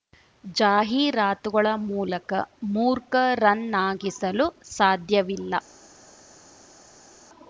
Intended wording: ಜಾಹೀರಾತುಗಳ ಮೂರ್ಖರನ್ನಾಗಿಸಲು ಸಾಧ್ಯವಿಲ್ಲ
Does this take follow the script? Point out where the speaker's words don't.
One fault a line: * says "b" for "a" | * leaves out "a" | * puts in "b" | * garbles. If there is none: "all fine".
* puts in "ಮೂಲಕ"